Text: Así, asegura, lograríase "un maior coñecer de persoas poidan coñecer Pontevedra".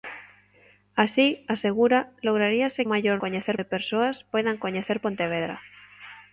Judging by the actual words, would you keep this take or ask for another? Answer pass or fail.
pass